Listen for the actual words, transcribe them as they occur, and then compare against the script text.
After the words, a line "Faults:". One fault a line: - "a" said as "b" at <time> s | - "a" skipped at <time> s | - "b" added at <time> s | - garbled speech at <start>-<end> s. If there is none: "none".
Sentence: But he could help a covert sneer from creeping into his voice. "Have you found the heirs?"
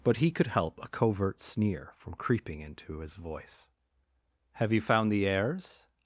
But he could help a covert sneer from creeping into his voice. "Have you found the heirs?"
Faults:
none